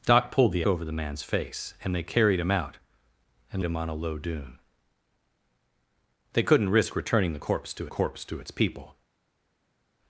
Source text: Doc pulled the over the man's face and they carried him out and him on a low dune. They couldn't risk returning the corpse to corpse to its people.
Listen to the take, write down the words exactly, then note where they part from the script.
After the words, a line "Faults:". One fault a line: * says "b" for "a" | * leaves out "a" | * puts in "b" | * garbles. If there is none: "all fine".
Doc pulled the over the man's face and they carried him out and him on a low dune. They couldn't risk returning the corpse to corpse to its people.
Faults:
all fine